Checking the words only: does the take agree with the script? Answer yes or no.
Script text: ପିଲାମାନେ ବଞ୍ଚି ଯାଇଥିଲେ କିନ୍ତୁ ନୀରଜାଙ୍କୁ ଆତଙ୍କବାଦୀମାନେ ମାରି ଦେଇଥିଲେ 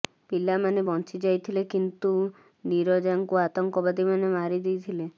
yes